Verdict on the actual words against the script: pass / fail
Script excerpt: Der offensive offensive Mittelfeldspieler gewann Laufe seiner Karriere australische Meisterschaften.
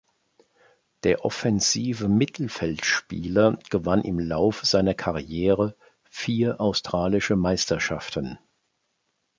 fail